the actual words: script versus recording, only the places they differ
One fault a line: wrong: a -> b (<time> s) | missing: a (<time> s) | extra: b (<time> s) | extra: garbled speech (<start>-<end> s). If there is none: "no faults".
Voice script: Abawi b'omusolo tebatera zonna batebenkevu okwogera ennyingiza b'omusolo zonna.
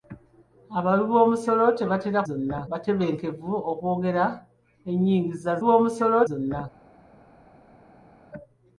no faults